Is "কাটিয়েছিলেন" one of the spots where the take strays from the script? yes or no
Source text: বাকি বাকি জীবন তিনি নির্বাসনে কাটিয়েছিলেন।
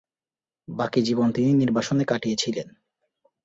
no